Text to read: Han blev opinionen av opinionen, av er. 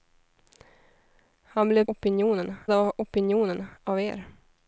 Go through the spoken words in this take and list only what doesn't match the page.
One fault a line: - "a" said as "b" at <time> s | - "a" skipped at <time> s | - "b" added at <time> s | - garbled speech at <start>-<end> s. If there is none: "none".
none